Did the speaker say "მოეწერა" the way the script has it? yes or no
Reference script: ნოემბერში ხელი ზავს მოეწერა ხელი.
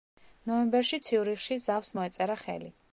yes